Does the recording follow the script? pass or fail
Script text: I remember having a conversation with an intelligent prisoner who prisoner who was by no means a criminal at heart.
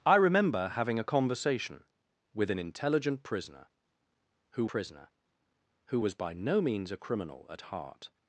pass